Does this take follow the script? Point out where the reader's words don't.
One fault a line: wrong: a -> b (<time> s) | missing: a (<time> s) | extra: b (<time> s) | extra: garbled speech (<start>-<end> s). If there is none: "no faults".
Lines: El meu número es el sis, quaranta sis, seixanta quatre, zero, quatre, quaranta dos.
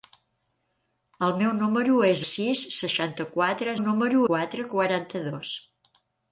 missing: el (2.2 s)
missing: quaranta sis (2.6 s)
wrong: zero -> número (3.8 s)